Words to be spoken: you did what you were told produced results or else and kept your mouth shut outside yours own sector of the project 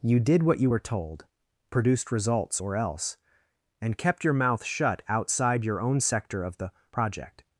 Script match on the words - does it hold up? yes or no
no